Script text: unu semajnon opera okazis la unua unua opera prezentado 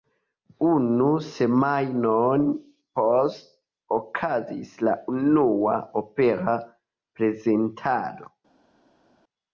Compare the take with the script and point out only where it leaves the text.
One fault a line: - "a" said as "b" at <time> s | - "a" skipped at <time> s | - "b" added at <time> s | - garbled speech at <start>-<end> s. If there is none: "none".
- "opera" said as "poste" at 3.0 s
- "unua" skipped at 5.8 s